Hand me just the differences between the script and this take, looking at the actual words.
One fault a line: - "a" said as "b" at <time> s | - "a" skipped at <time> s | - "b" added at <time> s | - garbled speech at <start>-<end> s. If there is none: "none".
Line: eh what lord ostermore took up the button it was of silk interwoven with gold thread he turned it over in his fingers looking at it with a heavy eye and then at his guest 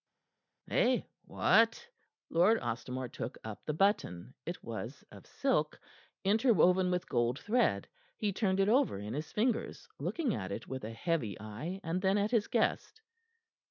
none